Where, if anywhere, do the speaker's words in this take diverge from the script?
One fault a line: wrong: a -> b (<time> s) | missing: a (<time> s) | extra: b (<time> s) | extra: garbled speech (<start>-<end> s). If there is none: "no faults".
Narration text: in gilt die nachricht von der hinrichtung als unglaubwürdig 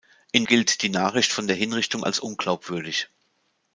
no faults